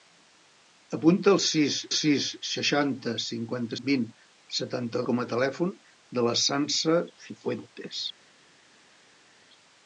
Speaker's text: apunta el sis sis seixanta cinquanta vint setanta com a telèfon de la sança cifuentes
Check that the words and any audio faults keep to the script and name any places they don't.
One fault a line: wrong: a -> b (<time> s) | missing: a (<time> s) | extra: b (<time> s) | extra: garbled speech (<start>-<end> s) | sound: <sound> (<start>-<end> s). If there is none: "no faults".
no faults